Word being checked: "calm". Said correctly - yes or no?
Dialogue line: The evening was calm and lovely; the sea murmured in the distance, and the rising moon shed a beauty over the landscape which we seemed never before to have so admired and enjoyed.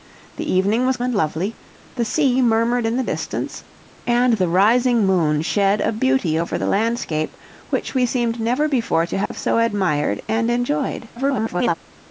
no